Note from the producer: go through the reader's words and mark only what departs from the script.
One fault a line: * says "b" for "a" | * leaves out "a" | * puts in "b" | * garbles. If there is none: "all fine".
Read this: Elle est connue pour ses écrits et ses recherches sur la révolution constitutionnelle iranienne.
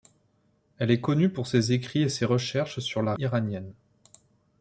* leaves out "révolution constitutionnelle"